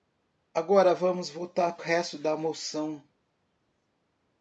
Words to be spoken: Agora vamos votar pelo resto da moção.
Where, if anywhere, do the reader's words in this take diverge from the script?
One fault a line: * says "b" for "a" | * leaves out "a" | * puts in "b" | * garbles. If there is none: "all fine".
* leaves out "pelo"